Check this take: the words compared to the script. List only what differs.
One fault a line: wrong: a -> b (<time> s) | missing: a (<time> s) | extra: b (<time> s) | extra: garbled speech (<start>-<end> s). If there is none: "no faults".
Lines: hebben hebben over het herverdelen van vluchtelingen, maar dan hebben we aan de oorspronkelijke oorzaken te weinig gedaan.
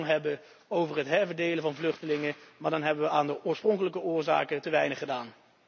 missing: hebben (0.4 s)